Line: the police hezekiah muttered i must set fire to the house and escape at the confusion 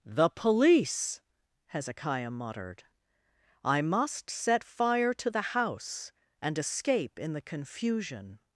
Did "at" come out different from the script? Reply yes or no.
yes